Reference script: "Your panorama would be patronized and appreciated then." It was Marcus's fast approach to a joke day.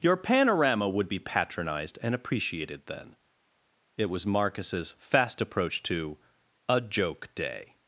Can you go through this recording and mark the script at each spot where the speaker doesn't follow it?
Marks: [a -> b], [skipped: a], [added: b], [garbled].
"Your panorama would be patronized and appreciated then." It was Marcus's fast approach to a joke day.